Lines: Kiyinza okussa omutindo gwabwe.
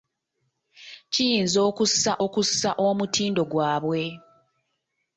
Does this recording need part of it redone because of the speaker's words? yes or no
yes